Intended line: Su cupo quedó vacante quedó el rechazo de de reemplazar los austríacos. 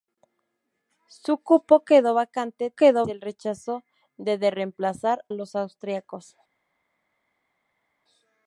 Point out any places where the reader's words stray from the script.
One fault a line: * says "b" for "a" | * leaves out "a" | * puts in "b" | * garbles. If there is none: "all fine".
all fine